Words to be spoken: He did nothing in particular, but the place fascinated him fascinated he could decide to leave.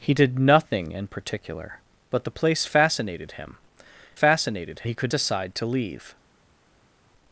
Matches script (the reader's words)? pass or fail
pass